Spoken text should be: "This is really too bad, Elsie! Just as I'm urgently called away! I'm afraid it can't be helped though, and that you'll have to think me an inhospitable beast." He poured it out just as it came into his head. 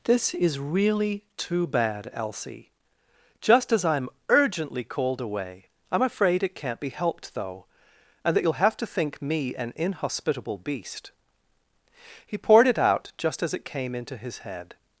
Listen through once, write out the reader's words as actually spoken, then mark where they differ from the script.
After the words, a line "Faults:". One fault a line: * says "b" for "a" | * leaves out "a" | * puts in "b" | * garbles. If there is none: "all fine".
"This is really too bad, Elsie! Just as I'm urgently called away! I'm afraid it can't be helped though, and that you'll have to think me an inhospitable beast." He poured it out just as it came into his head.
Faults:
all fine